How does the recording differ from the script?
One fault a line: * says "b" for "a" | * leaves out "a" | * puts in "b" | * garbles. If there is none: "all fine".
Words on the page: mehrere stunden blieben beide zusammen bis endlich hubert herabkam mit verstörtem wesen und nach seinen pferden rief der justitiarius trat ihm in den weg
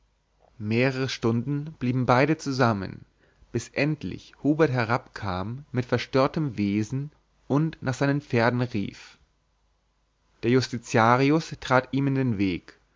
all fine